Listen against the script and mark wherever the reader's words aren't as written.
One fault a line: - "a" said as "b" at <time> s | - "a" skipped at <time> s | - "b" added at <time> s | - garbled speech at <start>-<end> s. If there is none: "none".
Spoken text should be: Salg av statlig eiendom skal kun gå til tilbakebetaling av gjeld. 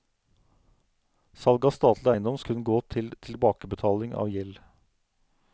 - "skal" skipped at 2.4 s